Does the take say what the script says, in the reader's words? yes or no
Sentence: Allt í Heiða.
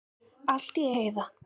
yes